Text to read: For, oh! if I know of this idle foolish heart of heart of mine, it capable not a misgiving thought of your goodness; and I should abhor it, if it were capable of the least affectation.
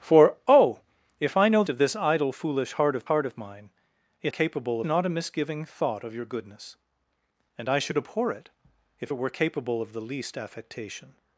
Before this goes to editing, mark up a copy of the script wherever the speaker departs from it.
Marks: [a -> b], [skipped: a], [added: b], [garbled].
For, oh! if I know of this idle foolish heart of heart of mine, it capable not a misgiving thought of your goodness; and I should abhor it, if it were capable of the least affectation.